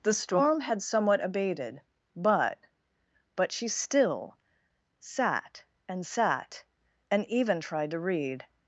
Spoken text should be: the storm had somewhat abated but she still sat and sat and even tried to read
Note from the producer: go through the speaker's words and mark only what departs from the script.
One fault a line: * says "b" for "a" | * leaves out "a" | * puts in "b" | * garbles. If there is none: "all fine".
* puts in "but"